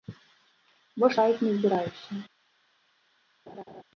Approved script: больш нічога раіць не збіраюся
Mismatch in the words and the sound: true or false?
true